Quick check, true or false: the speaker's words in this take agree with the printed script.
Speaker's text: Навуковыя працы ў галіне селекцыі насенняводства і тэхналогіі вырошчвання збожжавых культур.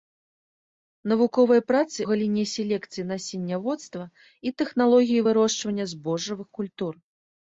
false